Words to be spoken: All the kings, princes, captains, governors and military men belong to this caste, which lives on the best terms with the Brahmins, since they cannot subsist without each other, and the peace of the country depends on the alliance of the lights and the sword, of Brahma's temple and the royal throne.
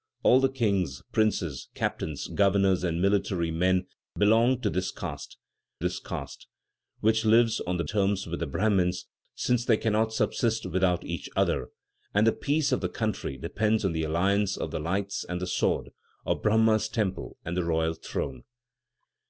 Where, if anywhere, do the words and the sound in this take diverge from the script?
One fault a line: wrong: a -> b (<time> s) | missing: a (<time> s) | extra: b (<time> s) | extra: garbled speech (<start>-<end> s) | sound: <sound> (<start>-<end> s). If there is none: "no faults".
extra: this caste (5.8 s)
missing: best (7.8 s)